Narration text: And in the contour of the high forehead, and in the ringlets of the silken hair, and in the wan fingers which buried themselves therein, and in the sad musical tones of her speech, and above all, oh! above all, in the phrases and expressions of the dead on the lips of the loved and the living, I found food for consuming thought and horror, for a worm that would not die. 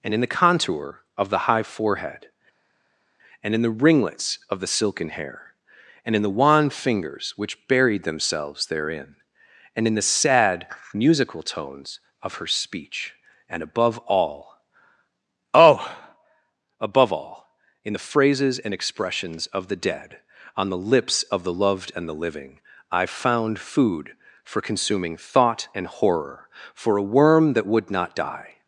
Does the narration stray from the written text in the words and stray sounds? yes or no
no